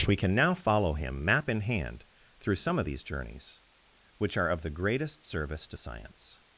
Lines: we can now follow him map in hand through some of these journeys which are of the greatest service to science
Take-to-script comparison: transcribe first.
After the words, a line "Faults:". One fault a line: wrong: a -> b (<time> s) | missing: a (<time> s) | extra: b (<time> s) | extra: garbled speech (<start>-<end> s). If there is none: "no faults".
we can now follow him map in hand through some of these journeys which are of the greatest service to science
Faults:
no faults